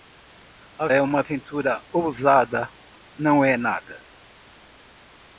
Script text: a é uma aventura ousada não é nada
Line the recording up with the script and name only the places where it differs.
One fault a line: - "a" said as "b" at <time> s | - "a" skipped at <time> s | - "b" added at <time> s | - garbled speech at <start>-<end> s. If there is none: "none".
none